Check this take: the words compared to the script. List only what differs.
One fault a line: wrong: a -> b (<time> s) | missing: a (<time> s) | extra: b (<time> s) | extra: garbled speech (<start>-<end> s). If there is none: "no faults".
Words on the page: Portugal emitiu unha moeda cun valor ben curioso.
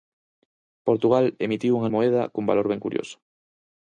no faults